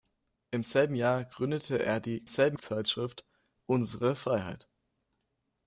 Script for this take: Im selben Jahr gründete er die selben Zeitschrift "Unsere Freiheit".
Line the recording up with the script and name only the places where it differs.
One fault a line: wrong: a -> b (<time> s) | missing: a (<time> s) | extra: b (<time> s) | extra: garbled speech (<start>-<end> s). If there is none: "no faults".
no faults